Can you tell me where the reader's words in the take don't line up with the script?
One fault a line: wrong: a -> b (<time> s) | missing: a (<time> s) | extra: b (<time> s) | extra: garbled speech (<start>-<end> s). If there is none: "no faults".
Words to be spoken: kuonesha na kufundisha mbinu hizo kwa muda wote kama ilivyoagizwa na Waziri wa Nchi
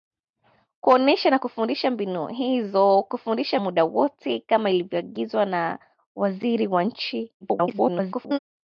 wrong: kwa -> kufundisha (3.1 s)
extra: garbled speech (7.4-8.4 s)